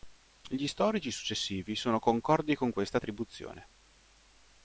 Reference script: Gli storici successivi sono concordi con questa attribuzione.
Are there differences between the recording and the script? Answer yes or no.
no